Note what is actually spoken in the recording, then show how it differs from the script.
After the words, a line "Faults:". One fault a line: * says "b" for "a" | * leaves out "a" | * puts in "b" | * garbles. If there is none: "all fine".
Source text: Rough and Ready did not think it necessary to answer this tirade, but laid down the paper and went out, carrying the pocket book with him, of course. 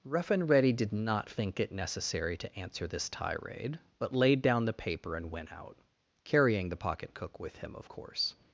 Rough and Ready did not think it necessary to answer this tirade, but laid down the paper and went out, carrying the pocket cook with him, of course.
Faults:
* says "cook" for "book"